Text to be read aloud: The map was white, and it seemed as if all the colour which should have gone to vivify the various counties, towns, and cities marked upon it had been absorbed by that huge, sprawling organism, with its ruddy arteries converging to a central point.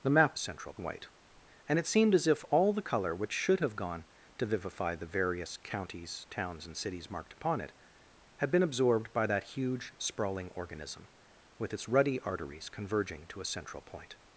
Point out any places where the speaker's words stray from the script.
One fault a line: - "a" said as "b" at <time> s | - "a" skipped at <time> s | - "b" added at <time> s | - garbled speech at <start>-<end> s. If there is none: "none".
- "was" said as "central" at 0.4 s